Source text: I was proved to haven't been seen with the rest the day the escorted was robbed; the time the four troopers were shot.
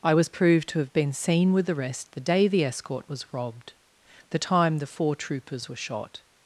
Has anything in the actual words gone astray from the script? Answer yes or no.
yes